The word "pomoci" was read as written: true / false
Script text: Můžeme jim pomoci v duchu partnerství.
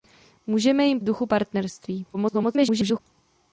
false